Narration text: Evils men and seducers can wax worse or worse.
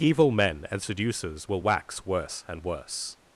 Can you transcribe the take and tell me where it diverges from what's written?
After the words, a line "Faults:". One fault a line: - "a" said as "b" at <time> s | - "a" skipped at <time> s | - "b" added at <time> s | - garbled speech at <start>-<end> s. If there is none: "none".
Evil men and seducers will wax worse and worse.
Faults:
- "Evils" said as "Evil" at 0.0 s
- "can" said as "will" at 1.5 s
- "or" said as "and" at 2.5 s